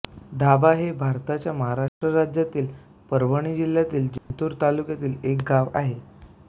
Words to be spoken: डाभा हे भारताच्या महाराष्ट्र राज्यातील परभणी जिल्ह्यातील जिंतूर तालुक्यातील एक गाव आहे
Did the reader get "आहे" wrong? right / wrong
right